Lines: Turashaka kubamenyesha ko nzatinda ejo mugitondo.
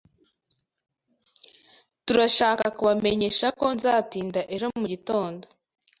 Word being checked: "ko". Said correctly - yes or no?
yes